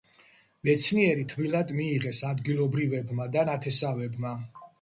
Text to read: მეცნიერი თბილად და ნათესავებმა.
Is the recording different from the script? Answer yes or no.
yes